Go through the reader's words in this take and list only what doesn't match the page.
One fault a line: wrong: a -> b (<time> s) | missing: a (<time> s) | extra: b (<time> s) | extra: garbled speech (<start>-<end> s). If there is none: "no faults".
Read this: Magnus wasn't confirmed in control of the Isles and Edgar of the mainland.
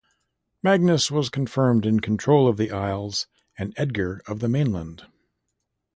wrong: wasn't -> was (1.1 s)